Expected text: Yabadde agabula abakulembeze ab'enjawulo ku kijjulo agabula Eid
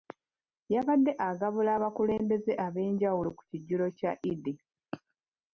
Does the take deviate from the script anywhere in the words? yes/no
yes